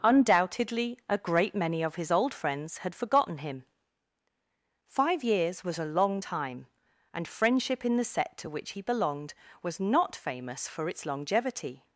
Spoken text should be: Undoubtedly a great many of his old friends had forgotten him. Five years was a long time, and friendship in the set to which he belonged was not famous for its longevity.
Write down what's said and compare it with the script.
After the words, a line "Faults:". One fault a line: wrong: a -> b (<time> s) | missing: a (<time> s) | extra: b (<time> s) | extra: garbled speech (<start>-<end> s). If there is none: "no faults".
Undoubtedly a great many of his old friends had forgotten him. Five years was a long time, and friendship in the set to which he belonged was not famous for its longevity.
Faults:
no faults